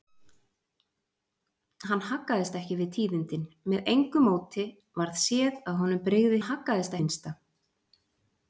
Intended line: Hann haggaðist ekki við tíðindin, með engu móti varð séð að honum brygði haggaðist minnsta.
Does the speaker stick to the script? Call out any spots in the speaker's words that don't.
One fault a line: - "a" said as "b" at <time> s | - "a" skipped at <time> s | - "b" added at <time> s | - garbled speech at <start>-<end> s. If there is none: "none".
none